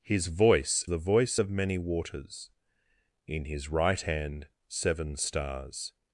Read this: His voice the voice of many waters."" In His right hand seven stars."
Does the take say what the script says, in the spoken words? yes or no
yes